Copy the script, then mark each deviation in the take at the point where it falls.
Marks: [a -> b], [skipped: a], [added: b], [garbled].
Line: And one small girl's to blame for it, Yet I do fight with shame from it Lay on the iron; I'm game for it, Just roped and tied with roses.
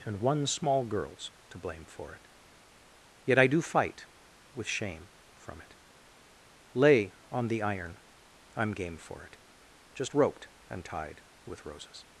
And one small girl's to blame for it, Yet I do fight with shame from it Lay on the iron; I'm game for it, Just roped and tied with roses.